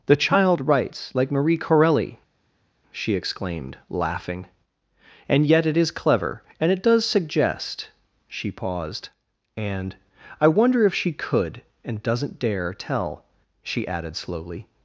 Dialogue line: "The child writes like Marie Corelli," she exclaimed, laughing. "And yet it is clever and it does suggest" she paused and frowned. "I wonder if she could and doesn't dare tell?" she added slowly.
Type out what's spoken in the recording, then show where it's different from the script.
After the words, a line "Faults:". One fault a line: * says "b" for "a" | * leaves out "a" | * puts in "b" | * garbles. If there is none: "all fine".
"The child writes like Marie Corelli," she exclaimed, laughing. "And yet it is clever and it does suggest" she paused and. "I wonder if she could and doesn't dare tell?" she added slowly.
Faults:
* leaves out "frowned"